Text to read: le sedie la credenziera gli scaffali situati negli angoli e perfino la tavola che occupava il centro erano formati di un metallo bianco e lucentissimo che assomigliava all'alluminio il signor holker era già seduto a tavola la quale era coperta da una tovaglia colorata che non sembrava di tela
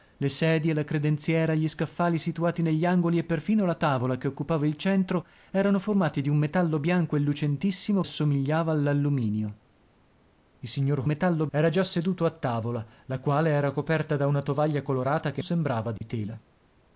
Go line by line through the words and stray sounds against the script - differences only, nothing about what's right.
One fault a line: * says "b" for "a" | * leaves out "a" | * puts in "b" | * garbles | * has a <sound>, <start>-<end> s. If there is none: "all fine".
* leaves out "che"
* says "metallo" for "holker"
* leaves out "non"
* has a dropout, 16.0-16.0 s